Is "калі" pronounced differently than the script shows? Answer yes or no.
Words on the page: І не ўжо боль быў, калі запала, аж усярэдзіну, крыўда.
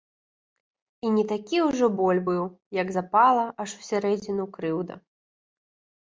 yes